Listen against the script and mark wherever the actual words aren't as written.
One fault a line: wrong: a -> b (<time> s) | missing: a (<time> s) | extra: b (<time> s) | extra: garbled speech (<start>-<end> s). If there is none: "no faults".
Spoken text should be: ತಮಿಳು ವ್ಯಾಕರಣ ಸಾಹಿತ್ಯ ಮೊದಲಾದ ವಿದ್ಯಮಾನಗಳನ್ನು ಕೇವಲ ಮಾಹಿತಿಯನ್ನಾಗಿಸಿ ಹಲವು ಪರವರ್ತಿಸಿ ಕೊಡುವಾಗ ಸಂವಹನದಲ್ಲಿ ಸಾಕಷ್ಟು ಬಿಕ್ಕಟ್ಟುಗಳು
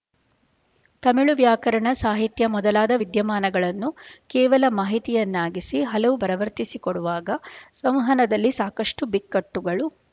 no faults